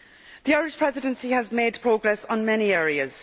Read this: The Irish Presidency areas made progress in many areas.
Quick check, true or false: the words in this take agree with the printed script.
false